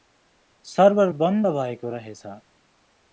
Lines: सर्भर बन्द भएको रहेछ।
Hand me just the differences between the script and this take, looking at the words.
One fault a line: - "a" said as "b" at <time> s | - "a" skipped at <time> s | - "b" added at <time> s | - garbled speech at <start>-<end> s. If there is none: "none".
none